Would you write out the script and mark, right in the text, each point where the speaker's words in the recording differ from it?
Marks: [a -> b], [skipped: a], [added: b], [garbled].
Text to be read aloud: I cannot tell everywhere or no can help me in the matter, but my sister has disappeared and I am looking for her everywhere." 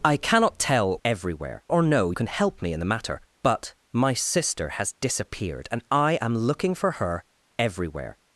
I cannot tell everywhere or no can help me in the matter, but my sister has disappeared and I am looking for her everywhere."